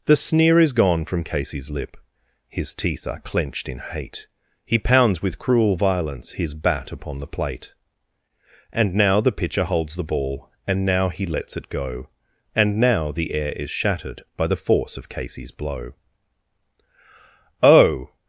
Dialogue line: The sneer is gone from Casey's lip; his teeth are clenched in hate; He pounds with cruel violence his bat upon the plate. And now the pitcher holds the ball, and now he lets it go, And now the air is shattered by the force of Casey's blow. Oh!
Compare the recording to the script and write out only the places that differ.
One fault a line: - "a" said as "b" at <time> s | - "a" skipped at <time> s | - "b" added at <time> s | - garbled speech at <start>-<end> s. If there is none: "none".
none